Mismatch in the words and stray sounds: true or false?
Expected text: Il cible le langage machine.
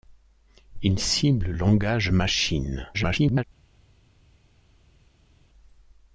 true